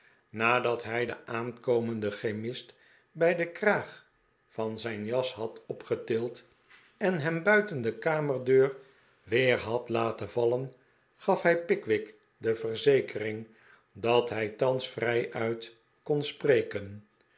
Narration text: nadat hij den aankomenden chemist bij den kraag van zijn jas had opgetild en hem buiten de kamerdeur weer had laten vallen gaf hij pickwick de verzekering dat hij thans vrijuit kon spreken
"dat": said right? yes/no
yes